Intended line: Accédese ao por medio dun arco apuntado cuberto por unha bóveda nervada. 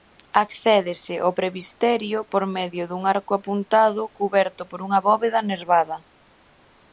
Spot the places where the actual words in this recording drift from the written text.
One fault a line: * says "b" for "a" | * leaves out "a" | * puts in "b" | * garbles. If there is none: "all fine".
* puts in "presbiterio"